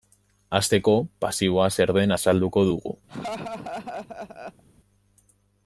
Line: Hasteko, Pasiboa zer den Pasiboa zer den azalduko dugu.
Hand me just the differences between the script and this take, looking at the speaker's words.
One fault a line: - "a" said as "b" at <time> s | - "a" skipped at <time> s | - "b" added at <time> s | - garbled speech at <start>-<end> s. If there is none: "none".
- "Pasiboa zer den" skipped at 2.2 s